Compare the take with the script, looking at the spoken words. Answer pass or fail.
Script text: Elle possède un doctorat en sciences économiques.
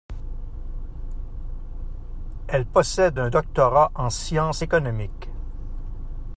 pass